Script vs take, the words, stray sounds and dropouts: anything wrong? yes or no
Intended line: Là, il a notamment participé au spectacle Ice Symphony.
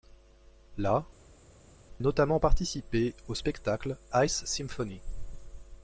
yes